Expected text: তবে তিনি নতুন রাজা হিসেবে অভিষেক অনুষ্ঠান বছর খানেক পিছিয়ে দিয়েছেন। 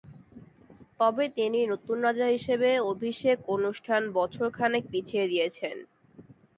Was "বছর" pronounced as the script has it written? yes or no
yes